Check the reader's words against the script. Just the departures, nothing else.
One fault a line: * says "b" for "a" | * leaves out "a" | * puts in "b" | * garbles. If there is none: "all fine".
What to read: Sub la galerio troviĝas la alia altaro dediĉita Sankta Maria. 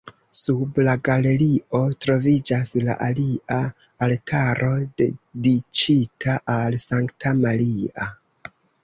* puts in "al"